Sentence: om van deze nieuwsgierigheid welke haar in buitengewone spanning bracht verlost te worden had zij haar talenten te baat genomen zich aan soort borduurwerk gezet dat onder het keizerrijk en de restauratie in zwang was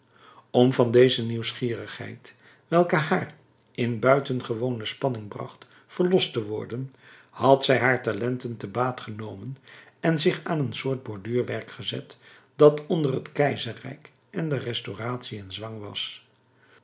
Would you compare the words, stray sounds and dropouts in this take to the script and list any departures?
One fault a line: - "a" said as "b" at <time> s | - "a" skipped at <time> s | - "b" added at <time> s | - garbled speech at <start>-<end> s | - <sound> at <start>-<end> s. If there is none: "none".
- "en" added at 10.0 s
- "een" added at 10.6 s